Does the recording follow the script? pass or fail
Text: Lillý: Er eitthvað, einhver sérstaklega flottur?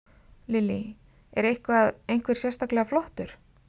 pass